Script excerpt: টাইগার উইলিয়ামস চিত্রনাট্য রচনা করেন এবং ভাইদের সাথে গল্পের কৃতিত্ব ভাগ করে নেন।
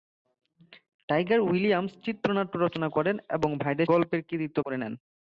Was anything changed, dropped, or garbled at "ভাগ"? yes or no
yes